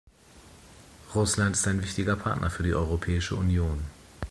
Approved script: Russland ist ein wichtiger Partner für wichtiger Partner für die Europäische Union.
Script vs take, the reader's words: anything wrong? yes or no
yes